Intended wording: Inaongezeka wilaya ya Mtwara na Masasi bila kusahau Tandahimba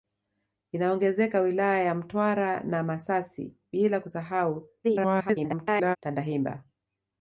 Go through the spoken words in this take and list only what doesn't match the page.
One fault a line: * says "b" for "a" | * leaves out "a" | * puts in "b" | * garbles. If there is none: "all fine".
* garbles